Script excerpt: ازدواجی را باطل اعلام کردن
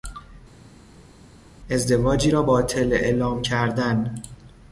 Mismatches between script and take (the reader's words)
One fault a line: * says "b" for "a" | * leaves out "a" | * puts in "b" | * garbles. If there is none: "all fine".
all fine